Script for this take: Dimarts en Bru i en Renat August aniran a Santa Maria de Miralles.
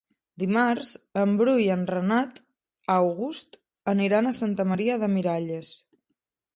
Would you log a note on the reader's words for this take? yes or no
no